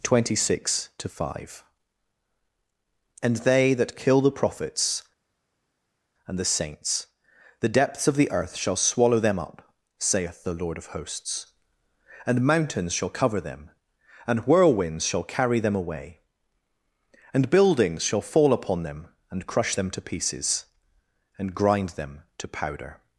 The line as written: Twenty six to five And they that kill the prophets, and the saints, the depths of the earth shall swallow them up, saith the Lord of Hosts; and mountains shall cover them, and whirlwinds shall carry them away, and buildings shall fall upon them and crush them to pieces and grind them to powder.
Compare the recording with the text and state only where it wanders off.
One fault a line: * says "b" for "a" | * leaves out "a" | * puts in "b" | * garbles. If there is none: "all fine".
all fine